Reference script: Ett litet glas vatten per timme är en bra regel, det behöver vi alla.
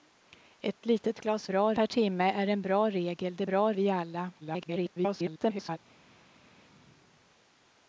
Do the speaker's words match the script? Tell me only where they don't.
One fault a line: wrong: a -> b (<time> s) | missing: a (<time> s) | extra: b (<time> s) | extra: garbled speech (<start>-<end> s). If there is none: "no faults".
wrong: vatten -> bra (1.5 s)
wrong: behöver -> bra (3.4 s)
extra: garbled speech (4.4-5.8 s)